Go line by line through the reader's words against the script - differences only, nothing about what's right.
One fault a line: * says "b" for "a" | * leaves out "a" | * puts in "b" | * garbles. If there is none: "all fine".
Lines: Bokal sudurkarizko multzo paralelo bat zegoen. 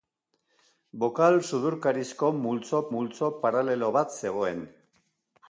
* puts in "multzo"